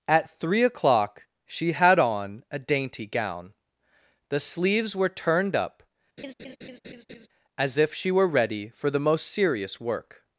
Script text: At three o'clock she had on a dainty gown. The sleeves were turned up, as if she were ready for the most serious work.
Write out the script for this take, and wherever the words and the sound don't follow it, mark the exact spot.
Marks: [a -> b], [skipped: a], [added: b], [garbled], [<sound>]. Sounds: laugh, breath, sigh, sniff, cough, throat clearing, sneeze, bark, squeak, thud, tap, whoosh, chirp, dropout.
At three o'clock she had on a dainty gown. The sleeves were turned up, [laugh] as if she were ready for the most serious work.